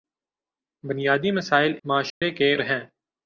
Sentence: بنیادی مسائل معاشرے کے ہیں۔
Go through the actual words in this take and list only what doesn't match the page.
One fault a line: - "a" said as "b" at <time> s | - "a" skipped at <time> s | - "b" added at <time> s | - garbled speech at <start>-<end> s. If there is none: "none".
none